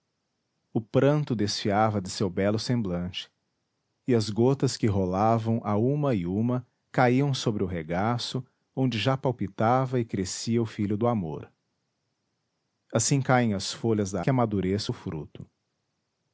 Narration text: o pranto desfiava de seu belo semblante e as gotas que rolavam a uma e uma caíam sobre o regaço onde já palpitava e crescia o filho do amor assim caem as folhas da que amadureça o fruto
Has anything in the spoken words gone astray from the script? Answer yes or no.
no